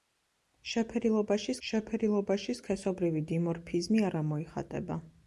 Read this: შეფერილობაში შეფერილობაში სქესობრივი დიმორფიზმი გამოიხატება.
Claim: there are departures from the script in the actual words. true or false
false